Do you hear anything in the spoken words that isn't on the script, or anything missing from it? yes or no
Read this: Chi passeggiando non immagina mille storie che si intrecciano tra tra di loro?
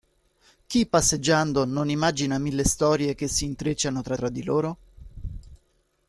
no